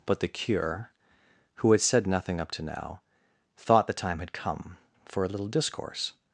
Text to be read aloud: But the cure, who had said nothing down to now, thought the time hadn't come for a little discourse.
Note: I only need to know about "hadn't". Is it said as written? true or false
false